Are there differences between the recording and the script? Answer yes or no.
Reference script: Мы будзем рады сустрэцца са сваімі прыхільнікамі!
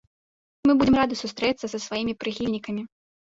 no